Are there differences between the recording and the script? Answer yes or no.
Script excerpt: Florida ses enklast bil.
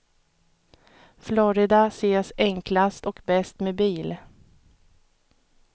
yes